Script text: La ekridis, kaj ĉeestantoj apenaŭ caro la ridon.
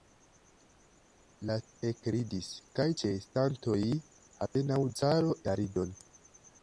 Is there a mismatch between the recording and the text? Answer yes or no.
no